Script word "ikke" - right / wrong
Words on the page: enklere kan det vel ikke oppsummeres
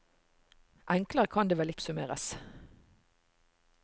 wrong